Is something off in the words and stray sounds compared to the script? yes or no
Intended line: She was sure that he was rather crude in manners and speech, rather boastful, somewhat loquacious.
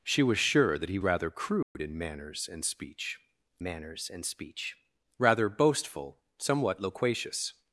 yes